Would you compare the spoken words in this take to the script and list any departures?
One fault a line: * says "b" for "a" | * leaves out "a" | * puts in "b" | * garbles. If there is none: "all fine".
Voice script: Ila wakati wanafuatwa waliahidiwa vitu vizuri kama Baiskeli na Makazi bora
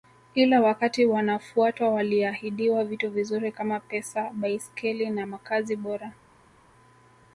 * puts in "Pesa"